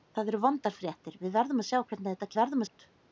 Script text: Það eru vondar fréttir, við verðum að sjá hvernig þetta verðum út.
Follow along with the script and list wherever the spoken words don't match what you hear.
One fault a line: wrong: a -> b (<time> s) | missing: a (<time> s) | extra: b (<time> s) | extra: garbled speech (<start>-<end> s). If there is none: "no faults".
no faults